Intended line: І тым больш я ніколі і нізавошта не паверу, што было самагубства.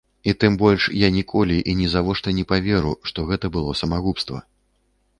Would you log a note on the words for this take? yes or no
yes